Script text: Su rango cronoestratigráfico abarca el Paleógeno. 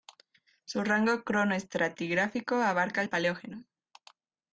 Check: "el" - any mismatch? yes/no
no